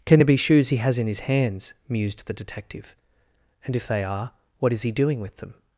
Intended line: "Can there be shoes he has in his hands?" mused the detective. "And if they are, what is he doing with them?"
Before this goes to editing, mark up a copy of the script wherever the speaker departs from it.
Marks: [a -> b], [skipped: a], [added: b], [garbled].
"Can there be shoes he has in his hands?" mused the detective. "And if they are, what is he doing with them?"